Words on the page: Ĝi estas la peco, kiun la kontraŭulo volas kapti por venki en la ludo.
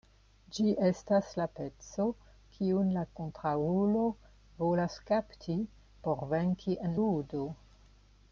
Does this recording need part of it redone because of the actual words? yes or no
yes